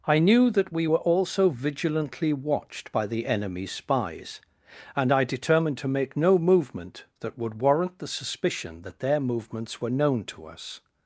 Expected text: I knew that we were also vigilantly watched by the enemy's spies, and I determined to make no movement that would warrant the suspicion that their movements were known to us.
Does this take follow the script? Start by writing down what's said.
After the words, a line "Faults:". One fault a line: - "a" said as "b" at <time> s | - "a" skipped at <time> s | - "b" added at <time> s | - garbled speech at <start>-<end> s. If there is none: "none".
I knew that we were also vigilantly watched by the enemy's spies, and I determined to make no movement that would warrant the suspicion that their movements were known to us.
Faults:
none